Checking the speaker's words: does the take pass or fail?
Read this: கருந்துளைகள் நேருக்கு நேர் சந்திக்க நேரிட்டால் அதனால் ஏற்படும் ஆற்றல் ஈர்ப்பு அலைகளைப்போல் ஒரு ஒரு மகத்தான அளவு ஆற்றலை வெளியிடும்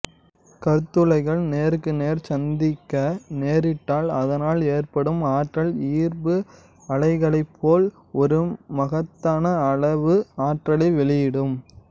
fail